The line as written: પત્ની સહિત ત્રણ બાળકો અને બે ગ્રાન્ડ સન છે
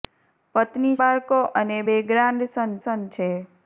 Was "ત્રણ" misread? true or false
true